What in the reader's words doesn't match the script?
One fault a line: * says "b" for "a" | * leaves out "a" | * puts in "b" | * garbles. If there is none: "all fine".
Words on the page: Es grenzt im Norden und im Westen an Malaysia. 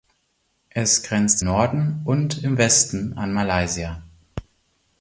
* leaves out "im"